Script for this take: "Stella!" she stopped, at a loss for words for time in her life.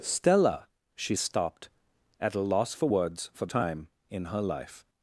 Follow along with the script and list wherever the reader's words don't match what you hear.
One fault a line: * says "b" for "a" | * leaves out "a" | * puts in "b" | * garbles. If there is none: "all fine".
all fine